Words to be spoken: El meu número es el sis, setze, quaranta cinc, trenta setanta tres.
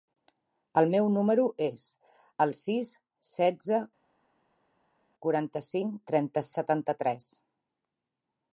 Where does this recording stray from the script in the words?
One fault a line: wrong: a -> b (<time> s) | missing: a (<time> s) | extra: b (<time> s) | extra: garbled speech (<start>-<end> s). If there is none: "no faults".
no faults